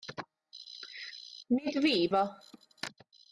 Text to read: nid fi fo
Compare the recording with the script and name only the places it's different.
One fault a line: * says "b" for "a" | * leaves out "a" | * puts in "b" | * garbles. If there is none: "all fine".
all fine